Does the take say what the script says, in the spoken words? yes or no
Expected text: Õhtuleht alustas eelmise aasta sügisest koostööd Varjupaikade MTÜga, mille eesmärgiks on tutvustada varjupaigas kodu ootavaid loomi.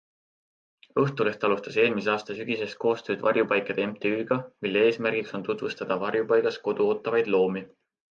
yes